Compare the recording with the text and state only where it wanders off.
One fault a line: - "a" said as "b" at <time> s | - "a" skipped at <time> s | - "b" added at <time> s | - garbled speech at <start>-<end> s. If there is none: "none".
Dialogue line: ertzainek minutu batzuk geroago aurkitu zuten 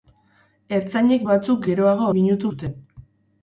- "minutu" skipped at 1.2 s
- "aurkitu" said as "minutu" at 2.2 s